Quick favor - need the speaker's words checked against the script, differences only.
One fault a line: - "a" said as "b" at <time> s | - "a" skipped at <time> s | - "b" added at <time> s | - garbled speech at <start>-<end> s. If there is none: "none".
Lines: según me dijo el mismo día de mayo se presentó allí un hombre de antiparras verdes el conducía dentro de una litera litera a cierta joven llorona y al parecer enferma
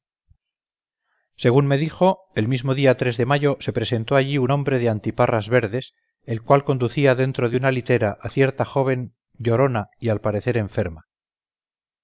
- "cual" added at 6.4 s
- "litera" skipped at 8.2 s